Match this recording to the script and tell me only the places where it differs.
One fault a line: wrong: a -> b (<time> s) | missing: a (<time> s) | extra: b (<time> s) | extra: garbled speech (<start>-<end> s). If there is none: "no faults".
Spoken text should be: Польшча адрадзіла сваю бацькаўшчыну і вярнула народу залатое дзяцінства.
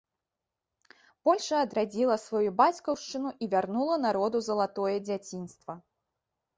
no faults